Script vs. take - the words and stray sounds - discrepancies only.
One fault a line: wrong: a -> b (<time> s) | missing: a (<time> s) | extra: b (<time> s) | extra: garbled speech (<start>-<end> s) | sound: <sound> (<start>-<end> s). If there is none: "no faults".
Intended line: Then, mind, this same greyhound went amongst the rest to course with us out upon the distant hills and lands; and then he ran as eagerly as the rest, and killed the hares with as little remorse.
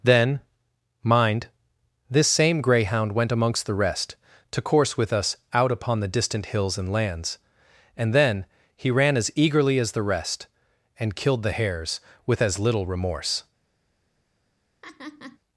sound: laugh (14.8-15.4 s)